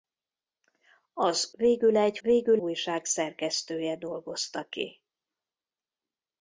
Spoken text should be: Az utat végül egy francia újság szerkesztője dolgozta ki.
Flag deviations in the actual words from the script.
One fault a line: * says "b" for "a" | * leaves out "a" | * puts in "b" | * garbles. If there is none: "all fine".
* leaves out "utat"
* says "végül" for "francia"